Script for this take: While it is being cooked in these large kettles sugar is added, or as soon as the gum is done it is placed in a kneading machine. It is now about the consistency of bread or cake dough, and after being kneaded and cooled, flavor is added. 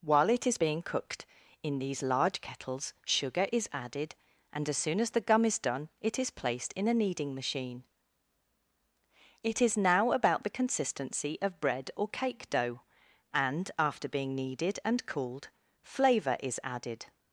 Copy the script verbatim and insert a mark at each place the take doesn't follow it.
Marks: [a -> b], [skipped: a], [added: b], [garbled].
While it is being cooked in these large kettles sugar is added, [or -> and] as soon as the gum is done it is placed in a kneading machine. It is now about the consistency of bread or cake dough, and after being kneaded and cooled, flavor is added.